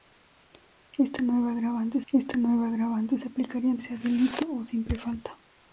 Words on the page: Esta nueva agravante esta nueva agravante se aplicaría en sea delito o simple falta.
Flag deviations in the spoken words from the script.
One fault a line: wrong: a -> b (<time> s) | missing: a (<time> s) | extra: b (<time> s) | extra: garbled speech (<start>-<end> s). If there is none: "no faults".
no faults